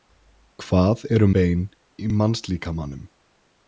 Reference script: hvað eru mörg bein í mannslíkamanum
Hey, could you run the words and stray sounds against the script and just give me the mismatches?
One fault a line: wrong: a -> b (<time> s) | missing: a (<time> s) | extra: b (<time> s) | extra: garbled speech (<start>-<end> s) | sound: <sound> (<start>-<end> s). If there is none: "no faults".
missing: mörg (1.3 s)